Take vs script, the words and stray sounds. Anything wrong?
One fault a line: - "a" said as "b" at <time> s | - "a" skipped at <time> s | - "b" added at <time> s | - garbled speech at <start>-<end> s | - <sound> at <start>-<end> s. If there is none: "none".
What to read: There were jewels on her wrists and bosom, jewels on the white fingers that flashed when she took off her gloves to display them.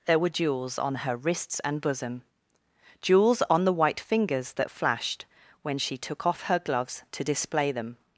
none